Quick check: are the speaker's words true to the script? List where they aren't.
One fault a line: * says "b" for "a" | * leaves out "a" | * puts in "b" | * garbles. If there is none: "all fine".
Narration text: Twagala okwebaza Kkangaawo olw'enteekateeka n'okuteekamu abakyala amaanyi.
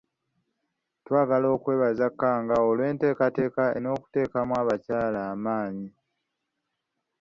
all fine